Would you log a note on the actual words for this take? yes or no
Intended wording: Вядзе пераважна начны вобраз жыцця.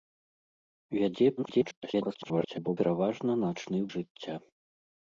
yes